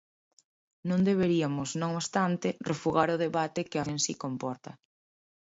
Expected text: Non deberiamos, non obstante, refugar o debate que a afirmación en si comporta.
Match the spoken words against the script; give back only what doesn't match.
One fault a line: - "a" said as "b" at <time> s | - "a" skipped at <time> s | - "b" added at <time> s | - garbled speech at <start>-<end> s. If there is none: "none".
- "afirmación" skipped at 3.8 s